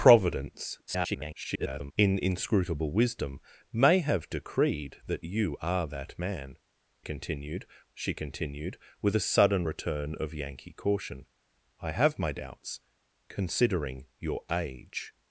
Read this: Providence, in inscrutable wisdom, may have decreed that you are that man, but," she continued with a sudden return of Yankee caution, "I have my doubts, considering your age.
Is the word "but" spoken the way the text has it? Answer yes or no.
no